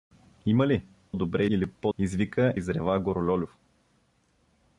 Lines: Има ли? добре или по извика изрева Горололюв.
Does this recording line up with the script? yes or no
yes